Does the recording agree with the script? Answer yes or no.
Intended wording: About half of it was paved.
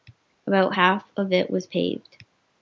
yes